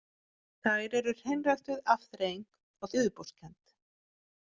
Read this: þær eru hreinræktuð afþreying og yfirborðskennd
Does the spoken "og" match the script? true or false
true